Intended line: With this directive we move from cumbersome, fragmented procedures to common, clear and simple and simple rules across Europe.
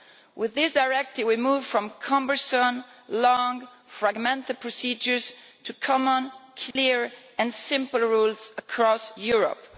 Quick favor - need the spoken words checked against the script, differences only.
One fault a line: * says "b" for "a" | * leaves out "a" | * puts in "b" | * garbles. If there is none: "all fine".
* puts in "long"
* leaves out "and simple"